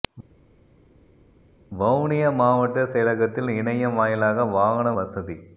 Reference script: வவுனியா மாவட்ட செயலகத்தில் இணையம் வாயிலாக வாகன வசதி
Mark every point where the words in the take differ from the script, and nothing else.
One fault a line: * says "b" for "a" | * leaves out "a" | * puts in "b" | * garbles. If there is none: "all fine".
all fine